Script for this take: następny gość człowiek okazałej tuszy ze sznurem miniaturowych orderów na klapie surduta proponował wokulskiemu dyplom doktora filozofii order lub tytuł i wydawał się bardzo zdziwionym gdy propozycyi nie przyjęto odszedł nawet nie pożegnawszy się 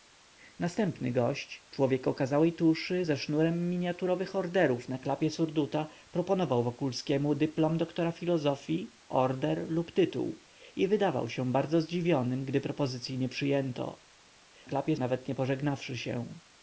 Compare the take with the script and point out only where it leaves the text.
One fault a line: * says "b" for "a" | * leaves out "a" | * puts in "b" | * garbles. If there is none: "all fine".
* says "klapie" for "odszedł"